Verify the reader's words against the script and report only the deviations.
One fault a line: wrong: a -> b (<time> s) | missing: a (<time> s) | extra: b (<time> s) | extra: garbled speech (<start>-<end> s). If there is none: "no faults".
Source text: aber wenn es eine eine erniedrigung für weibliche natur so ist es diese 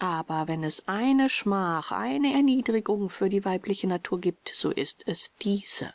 extra: schmach (1.3 s)
extra: die (3.3 s)
extra: gibt (4.2 s)